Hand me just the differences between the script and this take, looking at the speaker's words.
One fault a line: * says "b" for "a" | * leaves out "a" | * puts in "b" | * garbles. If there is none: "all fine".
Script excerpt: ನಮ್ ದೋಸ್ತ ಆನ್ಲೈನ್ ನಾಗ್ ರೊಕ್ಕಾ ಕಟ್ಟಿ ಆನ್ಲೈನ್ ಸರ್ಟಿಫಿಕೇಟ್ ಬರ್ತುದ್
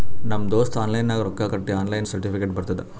all fine